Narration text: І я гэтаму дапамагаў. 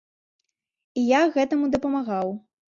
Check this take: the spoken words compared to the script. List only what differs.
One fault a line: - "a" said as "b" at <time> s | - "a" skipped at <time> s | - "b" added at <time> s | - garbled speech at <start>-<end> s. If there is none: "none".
none